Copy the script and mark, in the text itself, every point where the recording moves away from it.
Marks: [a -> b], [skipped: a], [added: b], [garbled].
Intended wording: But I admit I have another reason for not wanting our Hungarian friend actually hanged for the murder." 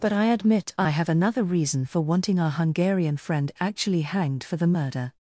But I admit I have another reason for [skipped: not] wanting our Hungarian friend actually hanged for the murder."